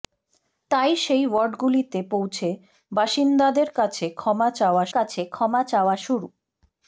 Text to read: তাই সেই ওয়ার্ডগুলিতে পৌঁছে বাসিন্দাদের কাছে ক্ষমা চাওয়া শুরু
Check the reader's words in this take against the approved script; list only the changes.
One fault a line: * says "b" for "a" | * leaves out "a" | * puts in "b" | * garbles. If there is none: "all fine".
* puts in "কাছে ক্ষমা চাওয়া"